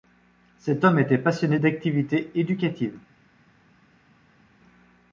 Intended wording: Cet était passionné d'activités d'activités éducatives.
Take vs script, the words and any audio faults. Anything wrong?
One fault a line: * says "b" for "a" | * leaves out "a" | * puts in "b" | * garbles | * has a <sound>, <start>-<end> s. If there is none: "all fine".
* puts in "homme"
* leaves out "d'activités"